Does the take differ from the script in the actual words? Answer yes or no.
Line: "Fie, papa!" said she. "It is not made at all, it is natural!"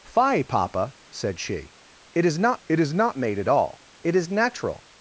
yes